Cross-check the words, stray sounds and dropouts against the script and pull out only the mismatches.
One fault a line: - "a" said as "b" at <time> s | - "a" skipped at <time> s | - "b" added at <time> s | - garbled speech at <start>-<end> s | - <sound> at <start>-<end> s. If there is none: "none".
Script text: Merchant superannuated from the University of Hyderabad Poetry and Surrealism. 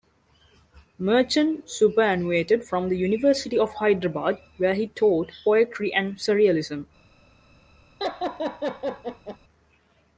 - "where he taught" added at 4.6 s
- laugh at 8.0-9.4 s